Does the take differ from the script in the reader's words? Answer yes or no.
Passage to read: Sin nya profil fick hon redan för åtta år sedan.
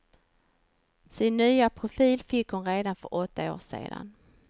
no